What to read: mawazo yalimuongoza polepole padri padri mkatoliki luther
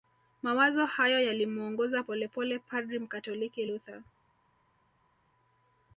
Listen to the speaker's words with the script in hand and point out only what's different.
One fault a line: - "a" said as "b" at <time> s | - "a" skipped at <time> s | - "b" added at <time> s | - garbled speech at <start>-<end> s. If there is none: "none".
- "hayo" added at 0.8 s
- "padri" skipped at 3.0 s